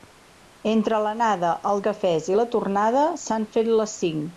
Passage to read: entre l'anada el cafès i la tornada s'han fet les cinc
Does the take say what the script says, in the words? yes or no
yes